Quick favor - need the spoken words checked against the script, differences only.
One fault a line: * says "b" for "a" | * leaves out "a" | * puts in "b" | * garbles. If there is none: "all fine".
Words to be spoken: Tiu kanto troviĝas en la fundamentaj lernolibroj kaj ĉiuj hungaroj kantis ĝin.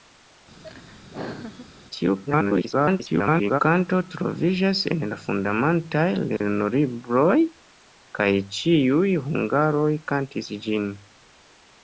* garbles